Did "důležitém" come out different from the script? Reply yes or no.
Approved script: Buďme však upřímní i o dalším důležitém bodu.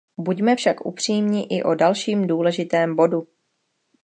no